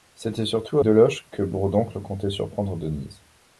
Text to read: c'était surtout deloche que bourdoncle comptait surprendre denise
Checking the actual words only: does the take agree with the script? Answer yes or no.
yes